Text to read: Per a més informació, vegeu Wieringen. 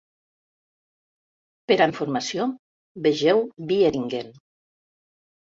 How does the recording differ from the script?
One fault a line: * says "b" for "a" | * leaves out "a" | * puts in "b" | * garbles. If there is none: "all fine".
* leaves out "més"